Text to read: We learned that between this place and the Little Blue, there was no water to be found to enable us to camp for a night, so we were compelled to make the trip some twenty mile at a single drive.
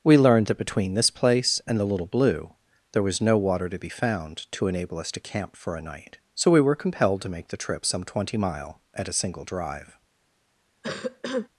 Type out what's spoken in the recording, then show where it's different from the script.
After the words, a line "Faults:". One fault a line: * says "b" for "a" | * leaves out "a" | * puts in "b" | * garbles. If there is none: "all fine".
We learned that between this place and the Little Blue, there was no water to be found to enable us to camp for a night, so we were compelled to make the trip some twenty mile at a single drive.
Faults:
all fine